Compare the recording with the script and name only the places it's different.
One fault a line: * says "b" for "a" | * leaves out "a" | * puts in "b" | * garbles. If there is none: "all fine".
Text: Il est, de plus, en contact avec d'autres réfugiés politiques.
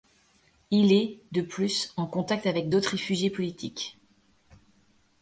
all fine